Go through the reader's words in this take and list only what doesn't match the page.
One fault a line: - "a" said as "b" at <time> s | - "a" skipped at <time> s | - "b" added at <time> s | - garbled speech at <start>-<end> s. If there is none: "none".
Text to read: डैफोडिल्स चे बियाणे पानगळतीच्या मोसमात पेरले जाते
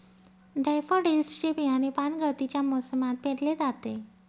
none